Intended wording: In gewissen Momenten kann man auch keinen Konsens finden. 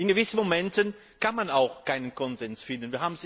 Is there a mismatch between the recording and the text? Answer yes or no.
no